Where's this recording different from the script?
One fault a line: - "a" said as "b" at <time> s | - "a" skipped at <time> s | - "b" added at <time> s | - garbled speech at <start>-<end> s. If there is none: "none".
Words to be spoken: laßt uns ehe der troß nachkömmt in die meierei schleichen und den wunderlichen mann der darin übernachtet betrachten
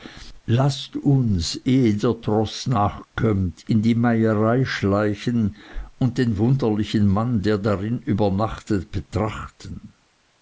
none